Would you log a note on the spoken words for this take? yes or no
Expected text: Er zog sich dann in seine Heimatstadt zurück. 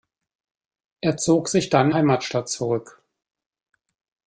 yes